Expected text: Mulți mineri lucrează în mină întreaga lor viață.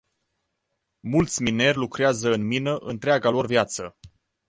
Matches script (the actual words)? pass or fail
pass